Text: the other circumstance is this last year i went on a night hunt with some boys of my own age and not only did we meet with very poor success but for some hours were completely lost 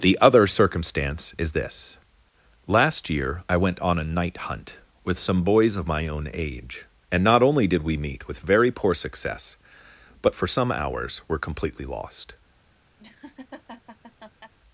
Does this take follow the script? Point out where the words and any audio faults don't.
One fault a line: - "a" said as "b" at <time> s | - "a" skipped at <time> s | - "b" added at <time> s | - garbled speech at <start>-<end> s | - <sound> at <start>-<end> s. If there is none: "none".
- laugh at 13.0-14.5 s